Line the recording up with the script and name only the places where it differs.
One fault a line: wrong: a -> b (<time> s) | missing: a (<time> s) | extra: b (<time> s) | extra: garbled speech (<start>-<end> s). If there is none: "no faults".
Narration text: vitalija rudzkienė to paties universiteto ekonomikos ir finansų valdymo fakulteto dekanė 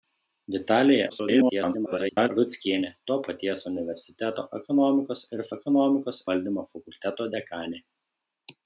extra: garbled speech (1.1-2.3 s)
wrong: finansų -> ekonomikos (5.6 s)